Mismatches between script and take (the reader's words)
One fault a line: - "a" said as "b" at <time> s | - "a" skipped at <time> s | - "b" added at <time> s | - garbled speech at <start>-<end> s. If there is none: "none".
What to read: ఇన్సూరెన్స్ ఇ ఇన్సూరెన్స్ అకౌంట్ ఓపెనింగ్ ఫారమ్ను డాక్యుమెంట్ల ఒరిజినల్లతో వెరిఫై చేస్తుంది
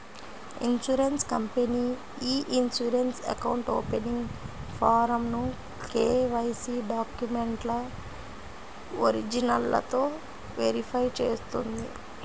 - "కంపెనీ" added at 1.3 s
- "కేవైసీ" added at 5.9 s